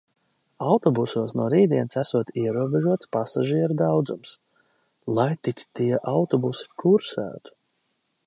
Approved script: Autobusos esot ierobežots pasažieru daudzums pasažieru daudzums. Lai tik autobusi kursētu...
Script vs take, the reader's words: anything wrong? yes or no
yes